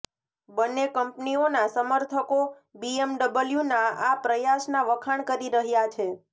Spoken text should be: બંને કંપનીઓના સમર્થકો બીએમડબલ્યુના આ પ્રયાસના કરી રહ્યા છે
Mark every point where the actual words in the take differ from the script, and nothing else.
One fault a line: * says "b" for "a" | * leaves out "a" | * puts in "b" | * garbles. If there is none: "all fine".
* puts in "વખાણ"